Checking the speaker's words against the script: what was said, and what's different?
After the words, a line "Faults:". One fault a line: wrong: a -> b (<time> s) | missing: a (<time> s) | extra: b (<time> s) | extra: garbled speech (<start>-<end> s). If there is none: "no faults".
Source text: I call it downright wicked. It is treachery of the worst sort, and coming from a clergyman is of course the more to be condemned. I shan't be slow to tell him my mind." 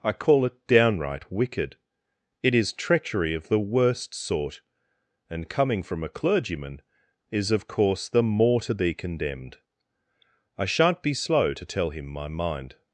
I call it downright wicked. It is treachery of the worst sort, and coming from a clergyman is of course the more to be condemned. I shan't be slow to tell him my mind."
Faults:
no faults